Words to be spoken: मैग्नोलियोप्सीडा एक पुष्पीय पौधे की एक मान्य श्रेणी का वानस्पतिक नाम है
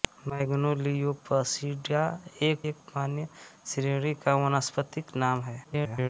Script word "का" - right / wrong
right